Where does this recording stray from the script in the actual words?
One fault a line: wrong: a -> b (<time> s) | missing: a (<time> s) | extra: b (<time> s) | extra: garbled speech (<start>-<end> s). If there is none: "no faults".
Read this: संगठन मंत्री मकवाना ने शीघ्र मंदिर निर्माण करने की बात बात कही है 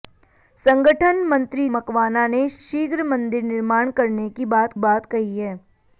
no faults